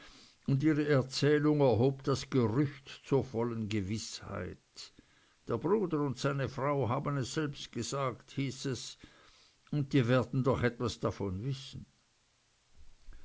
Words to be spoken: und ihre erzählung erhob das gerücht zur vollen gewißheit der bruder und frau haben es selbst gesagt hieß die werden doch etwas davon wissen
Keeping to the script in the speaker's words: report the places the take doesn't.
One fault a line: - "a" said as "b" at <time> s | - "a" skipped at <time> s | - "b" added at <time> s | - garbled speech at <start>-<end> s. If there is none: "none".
- "seine" added at 6.2 s
- "es und" added at 8.6 s